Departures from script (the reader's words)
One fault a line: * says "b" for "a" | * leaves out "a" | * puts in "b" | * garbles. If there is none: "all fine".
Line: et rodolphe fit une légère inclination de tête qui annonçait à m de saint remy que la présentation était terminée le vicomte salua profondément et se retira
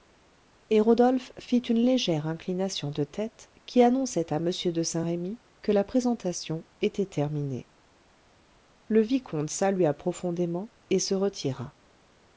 all fine